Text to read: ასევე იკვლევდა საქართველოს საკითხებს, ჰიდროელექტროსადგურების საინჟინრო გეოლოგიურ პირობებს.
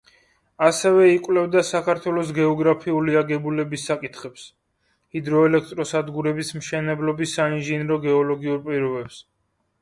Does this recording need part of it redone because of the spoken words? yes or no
yes